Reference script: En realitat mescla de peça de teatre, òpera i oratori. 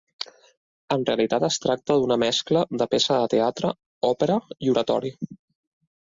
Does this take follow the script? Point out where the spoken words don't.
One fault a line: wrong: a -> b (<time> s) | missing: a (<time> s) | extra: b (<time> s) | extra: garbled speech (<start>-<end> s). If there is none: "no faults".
extra: es tracta d'una (1.5 s)